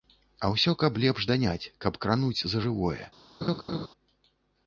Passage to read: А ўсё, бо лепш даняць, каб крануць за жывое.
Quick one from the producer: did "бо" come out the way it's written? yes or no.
no